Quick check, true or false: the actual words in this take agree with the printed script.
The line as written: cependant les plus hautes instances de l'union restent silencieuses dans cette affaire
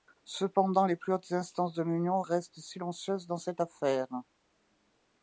true